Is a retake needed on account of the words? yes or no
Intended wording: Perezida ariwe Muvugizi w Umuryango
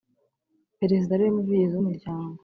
no